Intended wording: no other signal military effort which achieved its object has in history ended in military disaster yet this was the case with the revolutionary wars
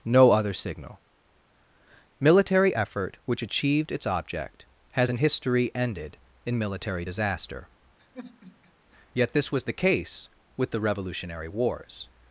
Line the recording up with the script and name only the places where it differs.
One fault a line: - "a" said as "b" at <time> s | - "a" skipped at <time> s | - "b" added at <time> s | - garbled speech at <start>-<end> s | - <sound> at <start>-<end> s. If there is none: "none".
- sigh at 8.0-8.7 s